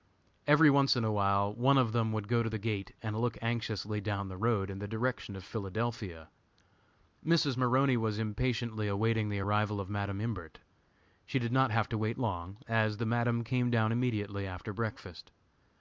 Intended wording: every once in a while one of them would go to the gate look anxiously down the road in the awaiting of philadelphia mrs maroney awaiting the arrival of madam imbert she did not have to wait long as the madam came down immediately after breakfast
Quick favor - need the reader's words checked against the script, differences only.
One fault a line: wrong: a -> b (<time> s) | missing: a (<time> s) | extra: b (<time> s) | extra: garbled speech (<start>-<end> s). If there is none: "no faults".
extra: and (3.0 s)
wrong: awaiting -> direction (4.9 s)
extra: was impatiently (8.0 s)